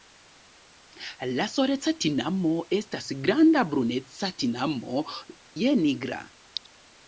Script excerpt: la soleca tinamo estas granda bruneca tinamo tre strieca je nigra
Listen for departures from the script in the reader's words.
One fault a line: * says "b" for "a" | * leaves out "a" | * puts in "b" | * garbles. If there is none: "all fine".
* leaves out "tre strieca"